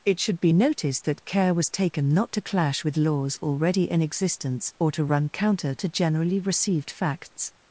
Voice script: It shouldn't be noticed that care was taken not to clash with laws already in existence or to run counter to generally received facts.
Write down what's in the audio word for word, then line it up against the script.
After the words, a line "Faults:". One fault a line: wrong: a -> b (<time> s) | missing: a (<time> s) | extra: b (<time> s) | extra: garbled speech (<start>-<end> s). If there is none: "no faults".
It should be noticed that care was taken not to clash with laws already in existence or to run counter to generally received facts.
Faults:
wrong: shouldn't -> should (0.2 s)